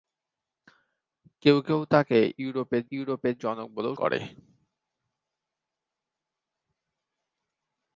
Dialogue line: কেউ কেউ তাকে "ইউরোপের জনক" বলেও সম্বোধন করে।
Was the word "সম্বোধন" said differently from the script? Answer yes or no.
yes